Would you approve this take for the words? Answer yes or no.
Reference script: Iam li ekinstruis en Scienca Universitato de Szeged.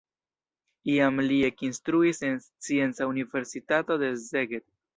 yes